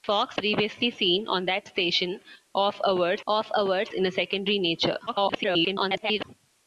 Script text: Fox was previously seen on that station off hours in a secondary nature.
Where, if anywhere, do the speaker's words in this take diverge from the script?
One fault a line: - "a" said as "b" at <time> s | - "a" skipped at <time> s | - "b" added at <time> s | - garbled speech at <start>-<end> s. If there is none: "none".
- "was" skipped at 0.4 s
- "off hours" added at 3.2 s
- garbled speech at 5.1-6.2 s